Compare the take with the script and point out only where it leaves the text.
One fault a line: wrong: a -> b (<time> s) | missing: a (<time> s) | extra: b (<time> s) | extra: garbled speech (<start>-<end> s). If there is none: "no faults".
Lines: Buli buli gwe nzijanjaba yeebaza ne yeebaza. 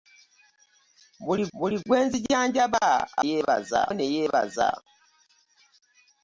no faults